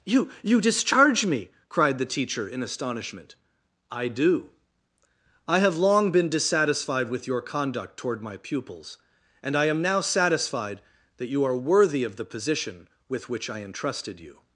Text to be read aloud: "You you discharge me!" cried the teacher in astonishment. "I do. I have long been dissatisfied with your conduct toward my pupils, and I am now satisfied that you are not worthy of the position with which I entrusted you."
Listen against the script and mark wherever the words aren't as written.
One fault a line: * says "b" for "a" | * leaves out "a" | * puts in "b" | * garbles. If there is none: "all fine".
* leaves out "not"